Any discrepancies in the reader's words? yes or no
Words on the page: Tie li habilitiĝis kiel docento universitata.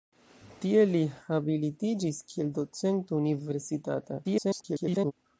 yes